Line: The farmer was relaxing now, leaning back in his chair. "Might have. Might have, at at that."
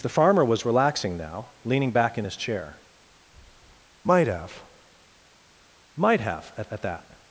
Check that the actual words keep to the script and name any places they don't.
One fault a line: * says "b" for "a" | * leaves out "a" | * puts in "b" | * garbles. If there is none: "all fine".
all fine